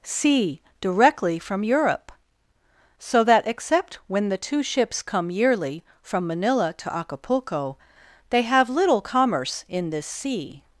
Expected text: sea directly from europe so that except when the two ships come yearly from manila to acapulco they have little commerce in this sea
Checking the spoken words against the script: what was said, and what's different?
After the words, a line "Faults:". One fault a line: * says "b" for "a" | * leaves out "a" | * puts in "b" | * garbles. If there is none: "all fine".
sea directly from europe so that except when the two ships come yearly from manila to acapulco they have little commerce in this sea
Faults:
all fine